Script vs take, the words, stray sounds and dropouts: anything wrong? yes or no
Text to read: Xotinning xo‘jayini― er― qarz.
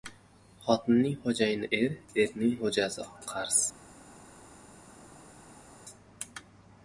yes